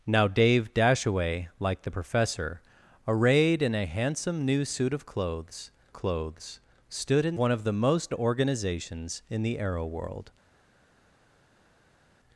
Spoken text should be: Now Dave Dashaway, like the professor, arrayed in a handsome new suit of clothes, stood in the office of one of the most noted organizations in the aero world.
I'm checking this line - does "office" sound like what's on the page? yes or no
no